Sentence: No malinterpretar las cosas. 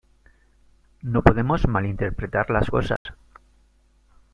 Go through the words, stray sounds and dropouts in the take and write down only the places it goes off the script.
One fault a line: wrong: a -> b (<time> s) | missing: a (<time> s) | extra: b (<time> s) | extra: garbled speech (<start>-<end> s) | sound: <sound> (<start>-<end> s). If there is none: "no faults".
extra: podemos (1.2 s)
sound: dropout (3.0-3.1 s)